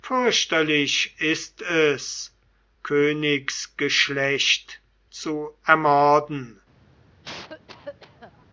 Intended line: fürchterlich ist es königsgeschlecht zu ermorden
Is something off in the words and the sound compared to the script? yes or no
yes